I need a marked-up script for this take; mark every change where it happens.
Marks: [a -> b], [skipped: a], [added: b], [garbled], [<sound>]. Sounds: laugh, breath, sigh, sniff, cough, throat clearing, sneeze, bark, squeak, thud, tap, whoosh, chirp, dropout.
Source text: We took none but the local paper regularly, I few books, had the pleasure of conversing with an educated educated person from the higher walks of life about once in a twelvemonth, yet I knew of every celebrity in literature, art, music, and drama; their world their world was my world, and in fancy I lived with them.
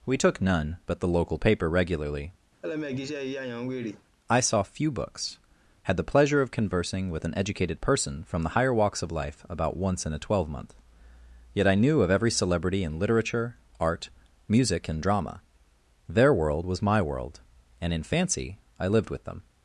We took none but the local paper regularly, [laugh] I [added: saw] few books, had the pleasure of conversing with an educated [skipped: educated] person from the higher walks of life about once in a twelvemonth, yet I knew of every celebrity in literature, art, music, and drama; their world [skipped: their world] was my world, and in fancy I lived with them.